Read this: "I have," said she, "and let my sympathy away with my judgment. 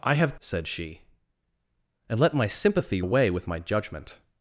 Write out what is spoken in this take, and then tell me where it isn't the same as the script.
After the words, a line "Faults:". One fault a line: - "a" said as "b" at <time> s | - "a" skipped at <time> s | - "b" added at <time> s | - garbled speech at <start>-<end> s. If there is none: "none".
"I have," said she, "and let my sympathy away with my judgment.
Faults:
none